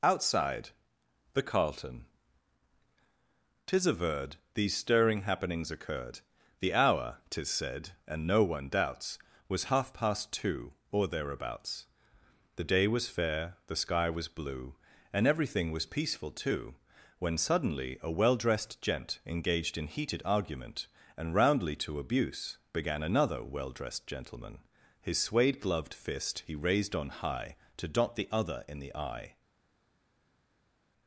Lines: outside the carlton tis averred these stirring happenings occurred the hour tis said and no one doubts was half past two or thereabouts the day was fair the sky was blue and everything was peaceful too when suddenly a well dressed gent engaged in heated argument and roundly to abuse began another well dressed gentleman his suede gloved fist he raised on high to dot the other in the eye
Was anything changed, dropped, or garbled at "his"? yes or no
no